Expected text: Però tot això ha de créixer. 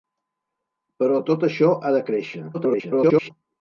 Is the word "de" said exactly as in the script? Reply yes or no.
yes